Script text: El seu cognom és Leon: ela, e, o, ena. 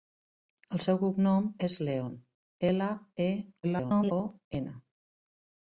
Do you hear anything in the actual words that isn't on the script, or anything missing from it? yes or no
yes